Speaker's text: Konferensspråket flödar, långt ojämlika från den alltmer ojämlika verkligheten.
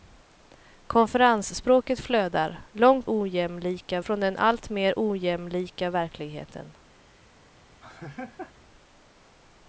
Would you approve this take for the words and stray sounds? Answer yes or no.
no